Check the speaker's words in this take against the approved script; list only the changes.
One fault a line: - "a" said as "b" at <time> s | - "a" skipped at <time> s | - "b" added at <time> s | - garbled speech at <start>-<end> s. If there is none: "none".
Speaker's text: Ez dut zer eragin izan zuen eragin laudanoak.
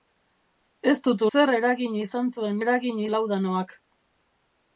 none